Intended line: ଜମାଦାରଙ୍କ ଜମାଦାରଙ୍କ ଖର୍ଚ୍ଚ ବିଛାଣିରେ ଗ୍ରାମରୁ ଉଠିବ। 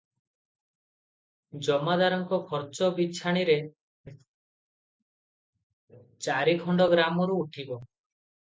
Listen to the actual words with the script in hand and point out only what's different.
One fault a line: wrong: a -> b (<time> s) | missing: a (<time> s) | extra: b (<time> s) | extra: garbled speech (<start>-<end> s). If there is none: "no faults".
missing: ଜମାଦାରଙ୍କ (2.4 s)
extra: ଚାରିଖଣ୍ଡ (6.2 s)